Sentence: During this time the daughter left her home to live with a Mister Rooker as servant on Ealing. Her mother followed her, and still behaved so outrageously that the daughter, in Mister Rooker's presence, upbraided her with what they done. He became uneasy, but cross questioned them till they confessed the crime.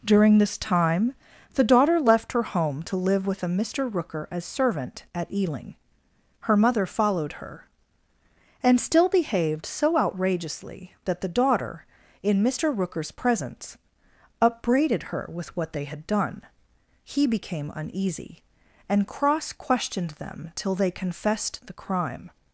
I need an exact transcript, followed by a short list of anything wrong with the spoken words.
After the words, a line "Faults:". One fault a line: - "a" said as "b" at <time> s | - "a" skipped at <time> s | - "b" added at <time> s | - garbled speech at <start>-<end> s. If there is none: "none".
During this time the daughter left her home to live with a Mister Rooker as servant at Ealing. Her mother followed her, and still behaved so outrageously that the daughter, in Mister Rooker's presence, upbraided her with what they had done. He became uneasy, and cross questioned them till they confessed the crime.
Faults:
- "on" said as "at" at 5.1 s
- "had" added at 15.8 s
- "but" said as "and" at 18.9 s